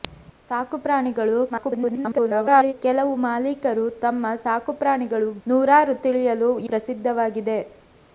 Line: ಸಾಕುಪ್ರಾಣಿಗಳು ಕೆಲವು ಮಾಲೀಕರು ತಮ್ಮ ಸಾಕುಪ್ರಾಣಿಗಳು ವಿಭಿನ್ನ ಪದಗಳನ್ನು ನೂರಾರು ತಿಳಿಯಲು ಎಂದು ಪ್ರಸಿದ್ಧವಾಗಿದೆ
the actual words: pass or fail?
fail